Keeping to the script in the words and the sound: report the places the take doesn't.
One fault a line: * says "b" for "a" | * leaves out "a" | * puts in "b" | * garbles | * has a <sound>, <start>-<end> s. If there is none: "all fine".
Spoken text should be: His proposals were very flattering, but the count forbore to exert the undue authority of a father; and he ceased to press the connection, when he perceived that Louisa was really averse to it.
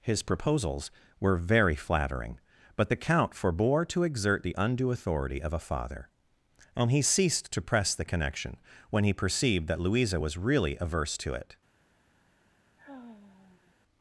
* has a sigh, 12.8-13.7 s